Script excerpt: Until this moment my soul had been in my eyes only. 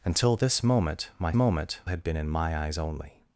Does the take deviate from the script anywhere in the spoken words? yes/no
yes